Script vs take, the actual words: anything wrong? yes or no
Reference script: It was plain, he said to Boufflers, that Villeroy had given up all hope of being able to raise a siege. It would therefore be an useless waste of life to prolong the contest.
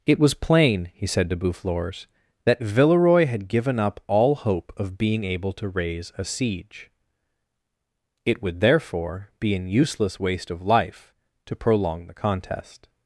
no